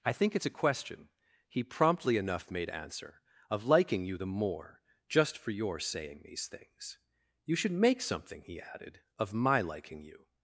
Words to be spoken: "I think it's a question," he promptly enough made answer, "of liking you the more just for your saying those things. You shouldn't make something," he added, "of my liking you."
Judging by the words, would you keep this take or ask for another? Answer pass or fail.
fail